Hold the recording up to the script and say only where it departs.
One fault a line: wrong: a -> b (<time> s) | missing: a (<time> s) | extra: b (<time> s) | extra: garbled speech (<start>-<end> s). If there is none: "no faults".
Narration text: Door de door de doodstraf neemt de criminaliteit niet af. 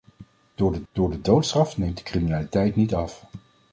no faults